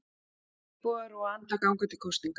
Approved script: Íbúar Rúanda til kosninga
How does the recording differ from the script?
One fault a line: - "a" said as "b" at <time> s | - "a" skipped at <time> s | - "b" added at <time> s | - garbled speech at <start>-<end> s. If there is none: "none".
- "ganga" added at 1.7 s